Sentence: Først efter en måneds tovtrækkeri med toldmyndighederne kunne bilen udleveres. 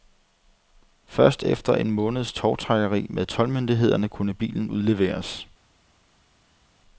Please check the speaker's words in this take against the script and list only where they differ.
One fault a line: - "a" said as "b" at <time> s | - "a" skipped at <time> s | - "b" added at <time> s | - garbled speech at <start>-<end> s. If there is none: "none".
none